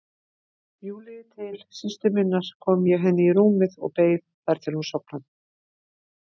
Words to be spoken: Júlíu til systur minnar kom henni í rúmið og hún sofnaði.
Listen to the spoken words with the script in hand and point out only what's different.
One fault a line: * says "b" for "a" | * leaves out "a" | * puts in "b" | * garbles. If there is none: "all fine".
* puts in "ég"
* puts in "beið þar til"